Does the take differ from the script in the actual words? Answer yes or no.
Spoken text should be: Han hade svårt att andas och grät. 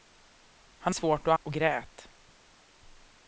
yes